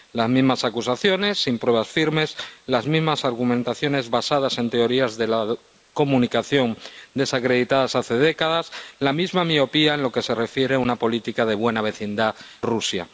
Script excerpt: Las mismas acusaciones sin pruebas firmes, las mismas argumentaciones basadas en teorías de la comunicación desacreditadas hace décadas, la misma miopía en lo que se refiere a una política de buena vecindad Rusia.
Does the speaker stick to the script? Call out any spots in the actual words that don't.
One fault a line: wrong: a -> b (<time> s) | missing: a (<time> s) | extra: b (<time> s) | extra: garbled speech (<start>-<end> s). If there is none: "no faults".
no faults